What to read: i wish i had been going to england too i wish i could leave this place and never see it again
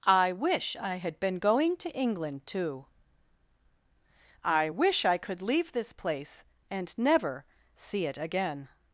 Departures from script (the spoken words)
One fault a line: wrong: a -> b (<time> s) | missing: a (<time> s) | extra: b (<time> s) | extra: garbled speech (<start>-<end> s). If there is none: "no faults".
no faults